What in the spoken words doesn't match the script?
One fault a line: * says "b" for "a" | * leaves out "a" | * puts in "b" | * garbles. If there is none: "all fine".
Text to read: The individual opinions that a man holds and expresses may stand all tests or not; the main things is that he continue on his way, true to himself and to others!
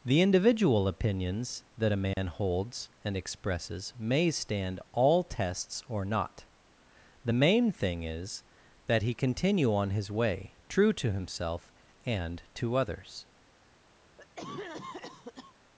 * says "thing" for "things"